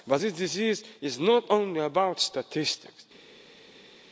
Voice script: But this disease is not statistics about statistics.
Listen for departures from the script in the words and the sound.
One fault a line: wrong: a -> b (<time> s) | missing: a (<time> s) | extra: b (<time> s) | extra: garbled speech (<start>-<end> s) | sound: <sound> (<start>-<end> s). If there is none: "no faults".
wrong: statistics -> only (1.5 s)